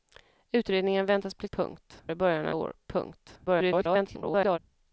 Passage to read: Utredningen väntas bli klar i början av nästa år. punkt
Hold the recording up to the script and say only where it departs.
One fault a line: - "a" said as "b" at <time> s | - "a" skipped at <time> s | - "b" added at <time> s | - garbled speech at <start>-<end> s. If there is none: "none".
- "klar" said as "punkt" at 1.5 s
- "nästa" skipped at 2.6 s
- garbled speech at 3.5-4.6 s